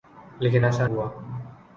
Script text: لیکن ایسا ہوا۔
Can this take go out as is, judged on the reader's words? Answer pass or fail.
pass